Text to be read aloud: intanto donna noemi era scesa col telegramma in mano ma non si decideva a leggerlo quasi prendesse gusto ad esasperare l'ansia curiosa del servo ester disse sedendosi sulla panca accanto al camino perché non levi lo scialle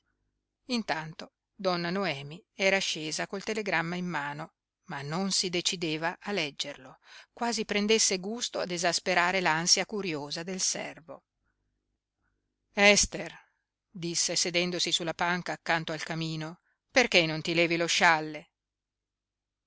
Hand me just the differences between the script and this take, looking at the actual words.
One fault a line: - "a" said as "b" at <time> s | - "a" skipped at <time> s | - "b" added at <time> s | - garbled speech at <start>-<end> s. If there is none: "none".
- "ti" added at 17.4 s